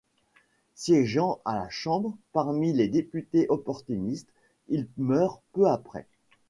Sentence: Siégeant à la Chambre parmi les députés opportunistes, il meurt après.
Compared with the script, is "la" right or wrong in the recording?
right